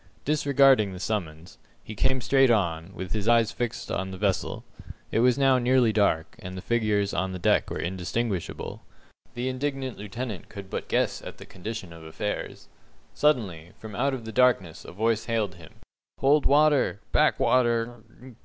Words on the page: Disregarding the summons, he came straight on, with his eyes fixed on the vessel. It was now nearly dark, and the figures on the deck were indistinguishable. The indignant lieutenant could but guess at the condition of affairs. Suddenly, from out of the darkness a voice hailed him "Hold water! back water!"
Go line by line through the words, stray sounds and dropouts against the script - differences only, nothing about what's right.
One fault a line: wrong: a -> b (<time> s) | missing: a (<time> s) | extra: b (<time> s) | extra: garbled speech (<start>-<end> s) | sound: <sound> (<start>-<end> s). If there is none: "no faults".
no faults